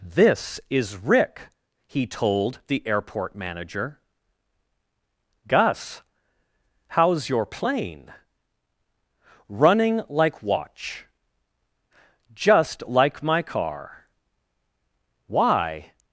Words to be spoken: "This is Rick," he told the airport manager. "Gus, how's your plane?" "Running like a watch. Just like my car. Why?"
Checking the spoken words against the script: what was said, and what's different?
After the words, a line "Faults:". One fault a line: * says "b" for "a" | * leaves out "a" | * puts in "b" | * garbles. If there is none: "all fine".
"This is Rick," he told the airport manager. "Gus, how's your plane?" "Running like watch. Just like my car. Why?"
Faults:
* leaves out "a"